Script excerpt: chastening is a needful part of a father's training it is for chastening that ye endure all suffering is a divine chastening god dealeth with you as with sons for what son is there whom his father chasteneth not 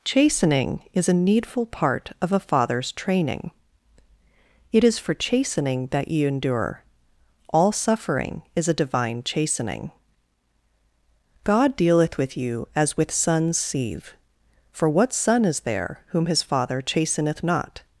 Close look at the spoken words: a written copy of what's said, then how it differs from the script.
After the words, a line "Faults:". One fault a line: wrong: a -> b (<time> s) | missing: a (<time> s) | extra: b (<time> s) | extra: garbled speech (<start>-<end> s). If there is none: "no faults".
chastening is a needful part of a father's training it is for chastening that ye endure all suffering is a divine chastening god dealeth with you as with sons sieve for what son is there whom his father chasteneth not
Faults:
extra: sieve (13.6 s)